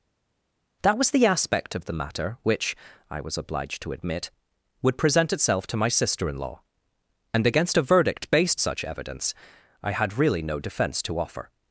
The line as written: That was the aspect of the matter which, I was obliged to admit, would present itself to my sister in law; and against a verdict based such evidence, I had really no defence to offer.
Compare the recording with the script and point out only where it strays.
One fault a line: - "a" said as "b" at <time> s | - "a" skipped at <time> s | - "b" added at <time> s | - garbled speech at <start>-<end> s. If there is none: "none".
none